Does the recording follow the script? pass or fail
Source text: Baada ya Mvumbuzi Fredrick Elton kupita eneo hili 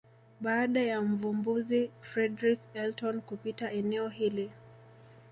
pass